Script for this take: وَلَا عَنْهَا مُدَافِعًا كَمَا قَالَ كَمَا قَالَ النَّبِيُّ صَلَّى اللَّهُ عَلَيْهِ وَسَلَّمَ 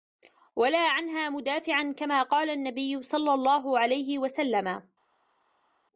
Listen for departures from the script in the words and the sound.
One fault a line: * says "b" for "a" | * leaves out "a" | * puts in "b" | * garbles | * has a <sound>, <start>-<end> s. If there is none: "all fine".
* leaves out "كَمَا قَالَ"